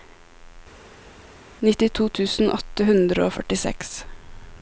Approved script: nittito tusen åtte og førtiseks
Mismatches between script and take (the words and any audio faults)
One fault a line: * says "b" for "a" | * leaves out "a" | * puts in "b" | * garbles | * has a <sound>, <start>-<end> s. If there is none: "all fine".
* puts in "hundre"